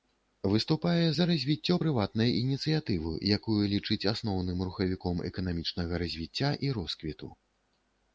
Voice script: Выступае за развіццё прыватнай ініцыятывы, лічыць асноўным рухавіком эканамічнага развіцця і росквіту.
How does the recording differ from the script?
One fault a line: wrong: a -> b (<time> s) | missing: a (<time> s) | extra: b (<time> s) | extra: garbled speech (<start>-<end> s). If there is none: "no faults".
extra: якую (3.4 s)